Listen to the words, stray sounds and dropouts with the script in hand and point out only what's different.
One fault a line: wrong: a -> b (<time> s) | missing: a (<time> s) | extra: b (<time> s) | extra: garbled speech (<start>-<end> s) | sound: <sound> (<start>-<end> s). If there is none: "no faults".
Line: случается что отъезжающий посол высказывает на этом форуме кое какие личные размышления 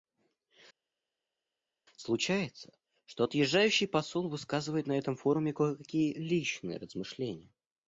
no faults